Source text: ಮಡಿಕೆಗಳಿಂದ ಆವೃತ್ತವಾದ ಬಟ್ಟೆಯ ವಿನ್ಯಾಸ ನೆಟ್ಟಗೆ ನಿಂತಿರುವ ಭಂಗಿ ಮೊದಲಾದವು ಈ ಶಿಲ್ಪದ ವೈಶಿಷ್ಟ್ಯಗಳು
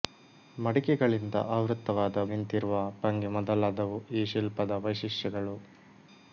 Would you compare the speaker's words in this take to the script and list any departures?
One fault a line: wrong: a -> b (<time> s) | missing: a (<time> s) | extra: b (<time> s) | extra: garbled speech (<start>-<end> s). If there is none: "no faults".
missing: ಬಟ್ಟೆಯ ವಿನ್ಯಾಸ ನೆಟ್ಟಗೆ (2.2 s)